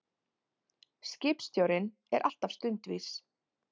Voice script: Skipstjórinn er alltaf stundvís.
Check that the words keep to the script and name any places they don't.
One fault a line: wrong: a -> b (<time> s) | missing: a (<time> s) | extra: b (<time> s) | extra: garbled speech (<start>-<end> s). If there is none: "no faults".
no faults